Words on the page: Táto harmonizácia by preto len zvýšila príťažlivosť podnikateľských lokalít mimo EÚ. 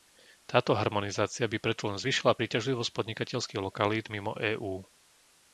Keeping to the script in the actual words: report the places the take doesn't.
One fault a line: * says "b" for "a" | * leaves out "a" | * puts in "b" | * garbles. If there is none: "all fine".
all fine